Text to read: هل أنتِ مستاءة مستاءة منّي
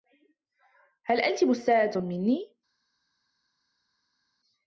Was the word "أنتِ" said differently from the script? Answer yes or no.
no